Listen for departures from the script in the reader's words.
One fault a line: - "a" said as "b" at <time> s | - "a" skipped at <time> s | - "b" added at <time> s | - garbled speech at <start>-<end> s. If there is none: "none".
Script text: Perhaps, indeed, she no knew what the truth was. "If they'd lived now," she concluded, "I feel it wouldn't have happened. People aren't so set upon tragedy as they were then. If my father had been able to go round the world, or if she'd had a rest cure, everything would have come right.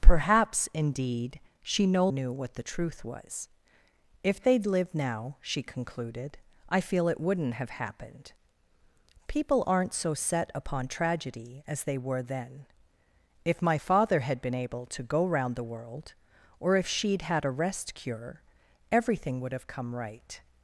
none